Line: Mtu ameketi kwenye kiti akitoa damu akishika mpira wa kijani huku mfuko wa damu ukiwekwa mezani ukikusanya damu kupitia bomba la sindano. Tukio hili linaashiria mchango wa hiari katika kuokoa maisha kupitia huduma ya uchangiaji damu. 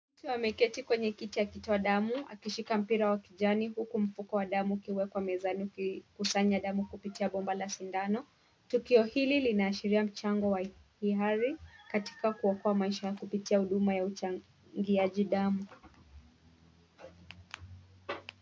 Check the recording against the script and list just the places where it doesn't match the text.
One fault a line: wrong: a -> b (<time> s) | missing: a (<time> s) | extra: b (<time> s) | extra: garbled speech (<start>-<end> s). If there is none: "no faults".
no faults